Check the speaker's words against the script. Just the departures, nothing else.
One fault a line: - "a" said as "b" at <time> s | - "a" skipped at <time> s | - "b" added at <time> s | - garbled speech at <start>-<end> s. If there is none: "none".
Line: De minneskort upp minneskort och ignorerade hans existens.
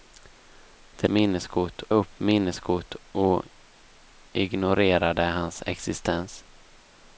none